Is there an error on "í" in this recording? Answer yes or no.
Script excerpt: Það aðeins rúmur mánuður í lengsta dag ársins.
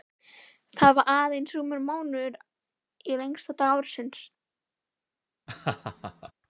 no